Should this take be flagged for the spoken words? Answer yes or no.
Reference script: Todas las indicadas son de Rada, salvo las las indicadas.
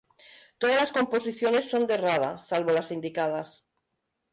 yes